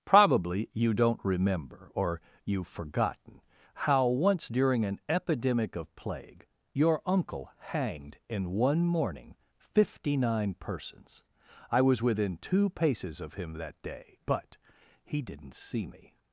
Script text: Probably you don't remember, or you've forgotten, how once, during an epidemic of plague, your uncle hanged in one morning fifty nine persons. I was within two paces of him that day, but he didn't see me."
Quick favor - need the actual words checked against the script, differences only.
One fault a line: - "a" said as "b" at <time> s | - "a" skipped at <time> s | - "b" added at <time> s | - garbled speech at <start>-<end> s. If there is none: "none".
none